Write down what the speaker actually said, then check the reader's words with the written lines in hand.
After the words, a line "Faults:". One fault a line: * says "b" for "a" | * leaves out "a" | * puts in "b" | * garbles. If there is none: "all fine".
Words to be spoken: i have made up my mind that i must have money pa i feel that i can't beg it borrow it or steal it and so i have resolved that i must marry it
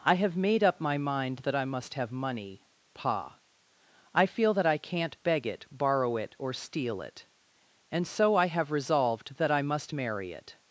i have made up my mind that i must have money pa i feel that i can't beg it borrow it or steal it and so i have resolved that i must marry it
Faults:
all fine